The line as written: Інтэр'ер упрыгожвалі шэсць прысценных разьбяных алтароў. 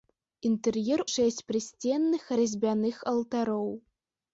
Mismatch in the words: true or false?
true